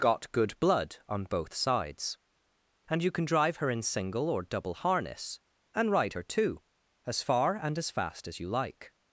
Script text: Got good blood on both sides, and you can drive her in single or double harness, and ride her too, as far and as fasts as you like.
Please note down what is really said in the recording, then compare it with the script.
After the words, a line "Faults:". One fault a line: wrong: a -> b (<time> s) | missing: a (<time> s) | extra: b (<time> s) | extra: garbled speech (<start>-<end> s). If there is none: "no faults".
Got good blood on both sides, and you can drive her in single or double harness, and ride her too, as far and as fast as you like.
Faults:
wrong: fasts -> fast (7.9 s)